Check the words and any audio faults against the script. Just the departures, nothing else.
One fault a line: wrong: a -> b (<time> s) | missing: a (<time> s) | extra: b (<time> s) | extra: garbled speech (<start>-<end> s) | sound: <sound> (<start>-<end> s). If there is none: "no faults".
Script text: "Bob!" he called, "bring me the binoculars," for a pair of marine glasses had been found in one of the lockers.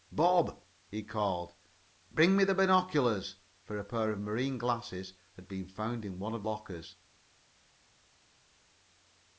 missing: the (6.4 s)